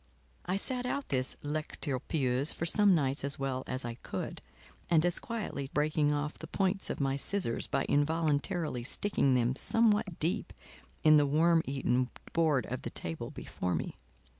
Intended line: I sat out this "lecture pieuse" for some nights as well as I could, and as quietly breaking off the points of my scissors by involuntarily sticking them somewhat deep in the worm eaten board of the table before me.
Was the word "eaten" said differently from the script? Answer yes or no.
no